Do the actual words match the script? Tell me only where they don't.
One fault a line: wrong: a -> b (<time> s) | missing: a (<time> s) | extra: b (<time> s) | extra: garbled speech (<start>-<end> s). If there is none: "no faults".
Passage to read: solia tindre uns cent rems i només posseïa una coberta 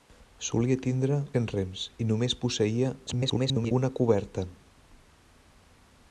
missing: uns (1.2 s)
extra: garbled speech (3.1-3.7 s)